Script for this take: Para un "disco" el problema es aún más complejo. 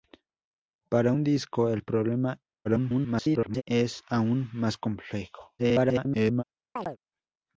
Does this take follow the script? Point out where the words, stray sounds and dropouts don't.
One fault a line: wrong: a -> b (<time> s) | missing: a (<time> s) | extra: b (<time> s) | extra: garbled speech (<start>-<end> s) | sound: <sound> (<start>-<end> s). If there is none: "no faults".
extra: garbled speech (2.6-3.6 s)
extra: garbled speech (5.6-6.4 s)
sound: chirp (6.8-7.0 s)